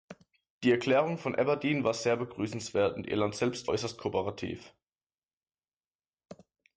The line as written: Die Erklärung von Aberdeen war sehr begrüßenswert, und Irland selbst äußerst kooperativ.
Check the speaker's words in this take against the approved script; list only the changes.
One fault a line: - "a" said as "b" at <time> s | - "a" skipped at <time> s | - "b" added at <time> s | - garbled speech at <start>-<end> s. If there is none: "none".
none